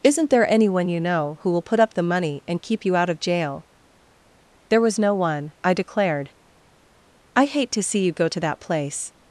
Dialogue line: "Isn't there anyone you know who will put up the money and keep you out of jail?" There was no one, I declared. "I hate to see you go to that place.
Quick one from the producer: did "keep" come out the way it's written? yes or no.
yes